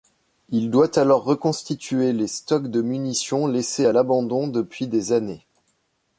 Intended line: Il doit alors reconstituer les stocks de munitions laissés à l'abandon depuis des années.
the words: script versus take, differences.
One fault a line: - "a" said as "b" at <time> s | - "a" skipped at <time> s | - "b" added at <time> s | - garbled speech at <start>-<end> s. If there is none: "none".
none